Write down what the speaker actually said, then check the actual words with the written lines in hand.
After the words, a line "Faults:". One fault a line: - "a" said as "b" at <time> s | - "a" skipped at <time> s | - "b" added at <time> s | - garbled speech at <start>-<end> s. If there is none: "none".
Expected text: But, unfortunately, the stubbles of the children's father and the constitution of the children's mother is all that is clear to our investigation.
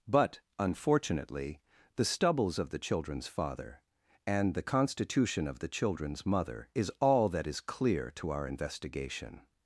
But, unfortunately, the stubbles of the children's father and the constitution of the children's mother is all that is clear to our investigation.
Faults:
none